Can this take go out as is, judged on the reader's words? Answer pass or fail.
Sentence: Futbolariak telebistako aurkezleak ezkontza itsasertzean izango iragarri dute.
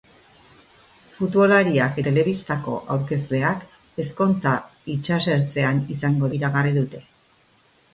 pass